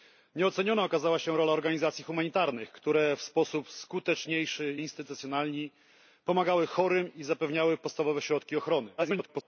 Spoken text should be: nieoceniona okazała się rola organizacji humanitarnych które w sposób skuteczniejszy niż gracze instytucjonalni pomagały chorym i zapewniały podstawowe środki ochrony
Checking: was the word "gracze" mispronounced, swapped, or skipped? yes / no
yes